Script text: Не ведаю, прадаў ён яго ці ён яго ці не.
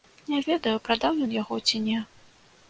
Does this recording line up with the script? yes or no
no